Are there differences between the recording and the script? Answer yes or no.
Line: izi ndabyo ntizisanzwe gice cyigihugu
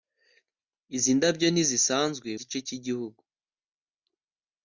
no